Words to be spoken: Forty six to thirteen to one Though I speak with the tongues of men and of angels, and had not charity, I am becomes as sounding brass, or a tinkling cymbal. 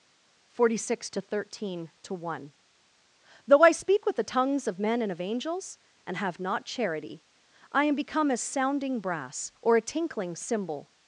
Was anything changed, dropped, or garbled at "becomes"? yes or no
yes